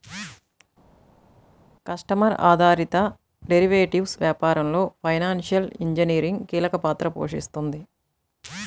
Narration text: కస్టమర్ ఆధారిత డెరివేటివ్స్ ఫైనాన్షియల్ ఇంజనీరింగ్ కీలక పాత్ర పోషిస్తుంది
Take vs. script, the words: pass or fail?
fail